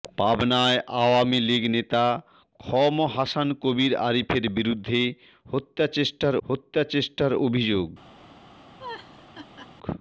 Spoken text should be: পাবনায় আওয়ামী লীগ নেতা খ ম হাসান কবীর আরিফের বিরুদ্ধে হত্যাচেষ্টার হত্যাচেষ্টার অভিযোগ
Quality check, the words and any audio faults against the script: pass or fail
fail